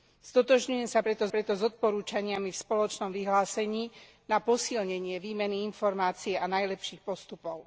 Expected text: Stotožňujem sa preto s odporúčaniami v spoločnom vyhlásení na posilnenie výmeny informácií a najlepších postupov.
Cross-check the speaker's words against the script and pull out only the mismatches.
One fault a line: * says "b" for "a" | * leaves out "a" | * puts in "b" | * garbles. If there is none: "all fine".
* puts in "preto"